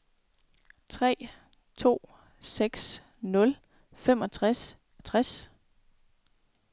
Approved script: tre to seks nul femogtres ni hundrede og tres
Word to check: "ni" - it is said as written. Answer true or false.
false